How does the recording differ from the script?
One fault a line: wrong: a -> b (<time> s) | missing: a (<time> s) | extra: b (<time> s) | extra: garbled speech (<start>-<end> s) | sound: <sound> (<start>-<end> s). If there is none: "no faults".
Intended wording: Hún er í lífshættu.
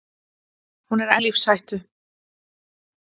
no faults